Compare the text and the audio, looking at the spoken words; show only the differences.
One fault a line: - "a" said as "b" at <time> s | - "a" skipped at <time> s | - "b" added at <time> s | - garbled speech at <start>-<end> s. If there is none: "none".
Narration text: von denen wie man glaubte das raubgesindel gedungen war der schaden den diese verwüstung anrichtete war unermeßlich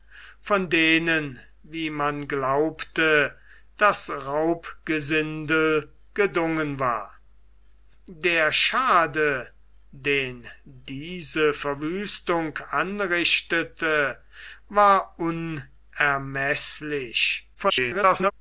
- garbled speech at 17.5-18.3 s